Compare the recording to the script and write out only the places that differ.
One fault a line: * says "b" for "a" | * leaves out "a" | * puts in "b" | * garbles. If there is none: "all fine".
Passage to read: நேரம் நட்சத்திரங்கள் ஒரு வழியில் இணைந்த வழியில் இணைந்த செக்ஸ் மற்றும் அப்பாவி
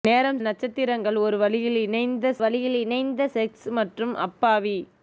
all fine